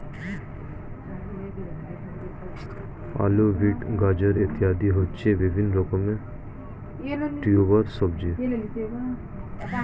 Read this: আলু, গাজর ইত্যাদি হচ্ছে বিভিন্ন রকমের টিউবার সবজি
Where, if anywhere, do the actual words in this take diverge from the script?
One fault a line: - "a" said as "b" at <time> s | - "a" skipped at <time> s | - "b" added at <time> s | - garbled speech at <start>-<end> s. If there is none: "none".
- "বিট" added at 3.6 s